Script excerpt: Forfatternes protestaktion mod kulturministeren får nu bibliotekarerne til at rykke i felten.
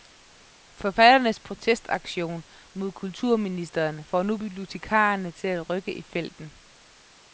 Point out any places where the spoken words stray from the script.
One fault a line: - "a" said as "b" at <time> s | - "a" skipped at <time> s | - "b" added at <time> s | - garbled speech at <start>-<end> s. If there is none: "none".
none